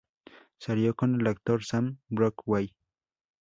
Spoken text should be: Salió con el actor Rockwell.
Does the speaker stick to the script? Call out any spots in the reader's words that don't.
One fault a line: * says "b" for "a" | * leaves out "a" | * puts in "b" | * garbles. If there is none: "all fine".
* puts in "Sam"